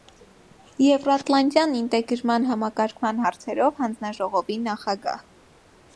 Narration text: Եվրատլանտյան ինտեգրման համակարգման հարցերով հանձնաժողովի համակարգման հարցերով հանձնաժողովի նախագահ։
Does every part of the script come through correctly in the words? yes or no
no